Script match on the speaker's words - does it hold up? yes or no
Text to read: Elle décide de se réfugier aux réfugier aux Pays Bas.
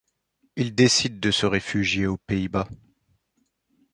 no